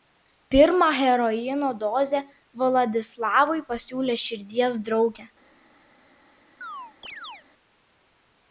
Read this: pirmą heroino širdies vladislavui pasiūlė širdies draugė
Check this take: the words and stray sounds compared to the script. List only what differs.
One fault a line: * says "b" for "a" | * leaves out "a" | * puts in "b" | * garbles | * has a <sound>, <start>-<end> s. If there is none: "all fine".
* says "dozę" for "širdies"
* has a chirp, 6.6-7.5 s